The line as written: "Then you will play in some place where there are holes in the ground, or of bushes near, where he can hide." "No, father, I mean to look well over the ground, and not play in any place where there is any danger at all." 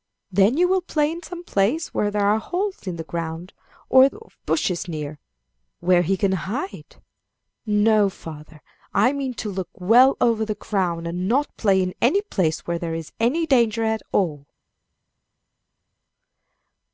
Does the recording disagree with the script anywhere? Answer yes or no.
no